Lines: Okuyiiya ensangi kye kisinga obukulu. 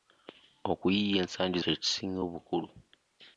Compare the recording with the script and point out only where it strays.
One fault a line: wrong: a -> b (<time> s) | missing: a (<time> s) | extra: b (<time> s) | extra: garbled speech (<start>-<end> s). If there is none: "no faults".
no faults